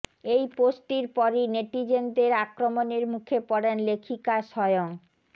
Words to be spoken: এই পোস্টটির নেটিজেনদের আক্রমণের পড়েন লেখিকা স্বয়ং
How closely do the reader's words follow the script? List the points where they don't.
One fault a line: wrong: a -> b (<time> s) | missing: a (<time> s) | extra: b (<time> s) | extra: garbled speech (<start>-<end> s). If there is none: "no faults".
extra: পরই (1.1 s)
extra: মুখে (3.1 s)